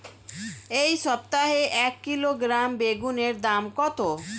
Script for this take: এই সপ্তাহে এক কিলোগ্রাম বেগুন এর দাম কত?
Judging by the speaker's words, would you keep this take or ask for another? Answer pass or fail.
pass